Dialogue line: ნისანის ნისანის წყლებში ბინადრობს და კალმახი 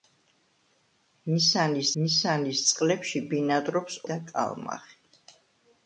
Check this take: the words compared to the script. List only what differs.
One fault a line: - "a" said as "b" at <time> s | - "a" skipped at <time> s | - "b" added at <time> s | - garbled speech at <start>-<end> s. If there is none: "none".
none